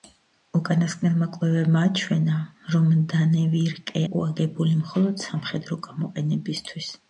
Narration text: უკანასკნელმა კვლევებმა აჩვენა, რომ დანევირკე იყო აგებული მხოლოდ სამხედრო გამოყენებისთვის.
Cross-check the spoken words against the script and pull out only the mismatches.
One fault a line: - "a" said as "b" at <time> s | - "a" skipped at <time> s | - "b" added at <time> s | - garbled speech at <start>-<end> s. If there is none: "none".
none